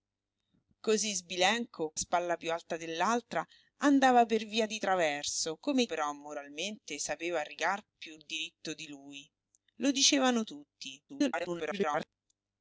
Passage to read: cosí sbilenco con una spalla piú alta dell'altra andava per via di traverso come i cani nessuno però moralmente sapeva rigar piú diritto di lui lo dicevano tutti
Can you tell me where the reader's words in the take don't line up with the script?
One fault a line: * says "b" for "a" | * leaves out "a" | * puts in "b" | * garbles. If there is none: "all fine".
* leaves out "con una"
* leaves out "cani nessuno"
* garbles